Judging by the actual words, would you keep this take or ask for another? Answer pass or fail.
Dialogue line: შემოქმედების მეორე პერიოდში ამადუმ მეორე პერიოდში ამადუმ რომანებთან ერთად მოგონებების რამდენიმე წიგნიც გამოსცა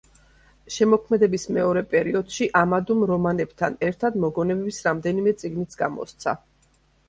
fail